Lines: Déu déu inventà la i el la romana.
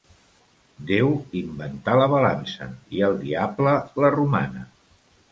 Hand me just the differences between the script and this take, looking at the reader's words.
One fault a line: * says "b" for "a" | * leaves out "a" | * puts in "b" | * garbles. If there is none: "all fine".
* leaves out "déu"
* puts in "balança"
* puts in "diable"